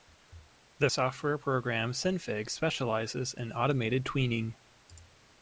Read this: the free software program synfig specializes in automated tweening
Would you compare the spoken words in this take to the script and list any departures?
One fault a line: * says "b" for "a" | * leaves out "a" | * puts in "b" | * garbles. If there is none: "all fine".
* leaves out "free"